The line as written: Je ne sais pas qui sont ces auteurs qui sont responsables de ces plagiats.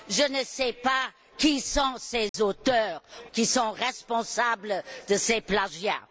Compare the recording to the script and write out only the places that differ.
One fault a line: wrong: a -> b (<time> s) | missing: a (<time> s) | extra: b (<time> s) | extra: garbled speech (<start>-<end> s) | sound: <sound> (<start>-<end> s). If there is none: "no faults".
sound: dropout (2.3-2.3 s)